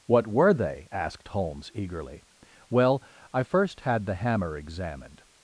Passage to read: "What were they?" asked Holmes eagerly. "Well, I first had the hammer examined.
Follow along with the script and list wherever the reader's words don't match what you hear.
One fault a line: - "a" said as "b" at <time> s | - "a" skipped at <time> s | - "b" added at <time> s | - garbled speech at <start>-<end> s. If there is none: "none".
none